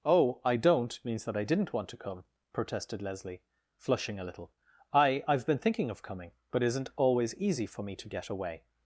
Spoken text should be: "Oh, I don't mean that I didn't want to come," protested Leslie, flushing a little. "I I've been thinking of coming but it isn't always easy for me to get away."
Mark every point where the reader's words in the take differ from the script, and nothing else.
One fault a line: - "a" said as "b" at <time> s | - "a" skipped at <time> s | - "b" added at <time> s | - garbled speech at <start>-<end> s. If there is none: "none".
- "mean" said as "means" at 1.1 s